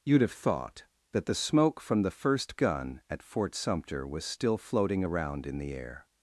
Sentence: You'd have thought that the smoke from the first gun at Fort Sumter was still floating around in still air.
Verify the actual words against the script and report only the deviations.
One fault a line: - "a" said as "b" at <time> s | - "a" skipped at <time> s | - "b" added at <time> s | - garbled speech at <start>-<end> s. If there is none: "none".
- "still" said as "the" at 5.6 s